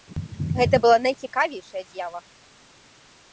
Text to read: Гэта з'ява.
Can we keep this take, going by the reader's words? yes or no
no